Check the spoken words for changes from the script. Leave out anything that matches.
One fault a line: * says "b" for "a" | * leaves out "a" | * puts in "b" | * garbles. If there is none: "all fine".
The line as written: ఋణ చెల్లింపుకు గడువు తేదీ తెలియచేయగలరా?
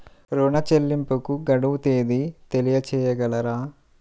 all fine